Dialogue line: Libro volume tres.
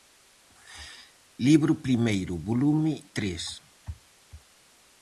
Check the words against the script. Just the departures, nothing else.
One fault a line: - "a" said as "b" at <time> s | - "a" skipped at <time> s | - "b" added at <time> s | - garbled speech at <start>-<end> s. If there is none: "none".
- "primeiro" added at 1.9 s